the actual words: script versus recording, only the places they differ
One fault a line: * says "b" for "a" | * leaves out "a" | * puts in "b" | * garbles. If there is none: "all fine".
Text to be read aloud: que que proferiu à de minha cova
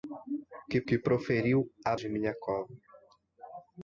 all fine